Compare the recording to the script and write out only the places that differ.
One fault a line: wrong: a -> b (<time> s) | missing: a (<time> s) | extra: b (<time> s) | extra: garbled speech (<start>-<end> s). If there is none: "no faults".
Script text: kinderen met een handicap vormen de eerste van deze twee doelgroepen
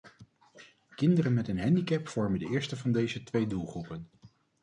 no faults